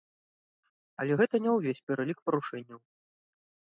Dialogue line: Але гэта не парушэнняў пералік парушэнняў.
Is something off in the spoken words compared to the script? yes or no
yes